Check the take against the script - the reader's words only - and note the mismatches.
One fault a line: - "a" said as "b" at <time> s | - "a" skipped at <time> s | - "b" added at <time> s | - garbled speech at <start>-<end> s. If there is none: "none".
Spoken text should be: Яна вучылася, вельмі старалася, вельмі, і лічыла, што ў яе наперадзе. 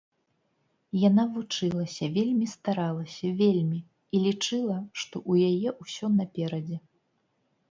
- "ўсё" added at 5.8 s